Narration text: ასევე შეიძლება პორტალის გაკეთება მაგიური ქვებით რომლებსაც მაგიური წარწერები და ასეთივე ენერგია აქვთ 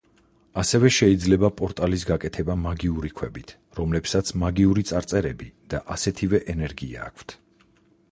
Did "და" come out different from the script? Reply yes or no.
no